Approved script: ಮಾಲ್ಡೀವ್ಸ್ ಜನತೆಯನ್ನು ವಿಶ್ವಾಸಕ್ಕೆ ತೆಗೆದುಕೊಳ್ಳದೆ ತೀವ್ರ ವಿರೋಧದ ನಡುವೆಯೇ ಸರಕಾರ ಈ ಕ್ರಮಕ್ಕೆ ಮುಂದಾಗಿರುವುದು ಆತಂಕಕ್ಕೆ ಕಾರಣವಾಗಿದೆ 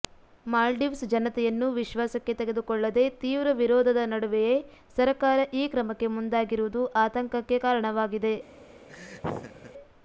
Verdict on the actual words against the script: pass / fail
pass